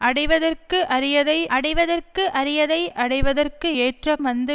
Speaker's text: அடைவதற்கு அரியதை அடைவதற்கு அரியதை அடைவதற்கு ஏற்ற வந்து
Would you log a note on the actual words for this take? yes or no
no